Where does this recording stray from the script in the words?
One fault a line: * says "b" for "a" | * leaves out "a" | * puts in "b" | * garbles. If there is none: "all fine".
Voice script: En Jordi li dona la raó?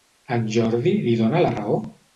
all fine